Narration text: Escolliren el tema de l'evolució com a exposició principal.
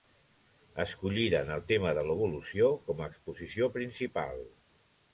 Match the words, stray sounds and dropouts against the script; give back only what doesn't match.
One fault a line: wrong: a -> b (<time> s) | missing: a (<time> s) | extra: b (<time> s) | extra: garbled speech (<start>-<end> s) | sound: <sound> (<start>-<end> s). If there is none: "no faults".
no faults